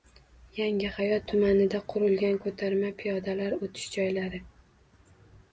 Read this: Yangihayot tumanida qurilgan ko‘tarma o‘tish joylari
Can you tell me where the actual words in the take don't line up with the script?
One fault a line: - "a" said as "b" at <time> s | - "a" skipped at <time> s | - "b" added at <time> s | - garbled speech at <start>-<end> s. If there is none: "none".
- "piyodalar" added at 3.0 s